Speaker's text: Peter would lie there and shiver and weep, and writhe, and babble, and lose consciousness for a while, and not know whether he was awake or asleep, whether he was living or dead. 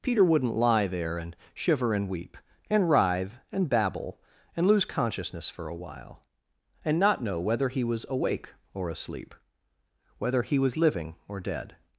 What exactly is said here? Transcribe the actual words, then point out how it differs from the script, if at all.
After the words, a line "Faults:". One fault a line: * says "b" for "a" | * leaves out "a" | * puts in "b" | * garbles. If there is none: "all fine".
Peter wouldn't lie there and shiver and weep, and writhe, and babble, and lose consciousness for a while, and not know whether he was awake or asleep, whether he was living or dead.
Faults:
* says "wouldn't" for "would"